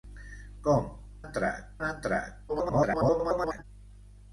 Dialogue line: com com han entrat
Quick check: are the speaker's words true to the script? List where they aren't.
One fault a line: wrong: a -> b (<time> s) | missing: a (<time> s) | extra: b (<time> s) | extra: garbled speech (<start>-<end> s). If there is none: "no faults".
wrong: com -> entrat (1.2 s)
extra: garbled speech (2.5-3.6 s)